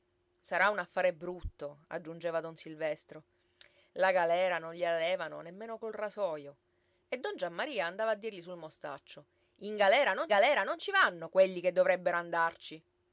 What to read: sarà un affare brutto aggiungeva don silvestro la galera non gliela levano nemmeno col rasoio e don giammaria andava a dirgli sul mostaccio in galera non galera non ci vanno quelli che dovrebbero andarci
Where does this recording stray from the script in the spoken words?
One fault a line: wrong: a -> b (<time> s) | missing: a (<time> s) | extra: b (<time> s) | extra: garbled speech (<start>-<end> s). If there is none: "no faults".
no faults